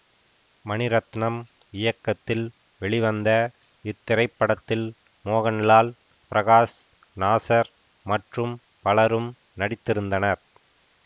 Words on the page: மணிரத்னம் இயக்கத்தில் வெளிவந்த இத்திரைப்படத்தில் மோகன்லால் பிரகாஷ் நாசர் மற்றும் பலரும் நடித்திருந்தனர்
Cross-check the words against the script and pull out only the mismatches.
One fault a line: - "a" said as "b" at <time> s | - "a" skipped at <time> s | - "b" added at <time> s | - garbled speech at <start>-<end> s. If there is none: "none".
none